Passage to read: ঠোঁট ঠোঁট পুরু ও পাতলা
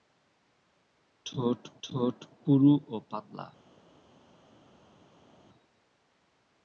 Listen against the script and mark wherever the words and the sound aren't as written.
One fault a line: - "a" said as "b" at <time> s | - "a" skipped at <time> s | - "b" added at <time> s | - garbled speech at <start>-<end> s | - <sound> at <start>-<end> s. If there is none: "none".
none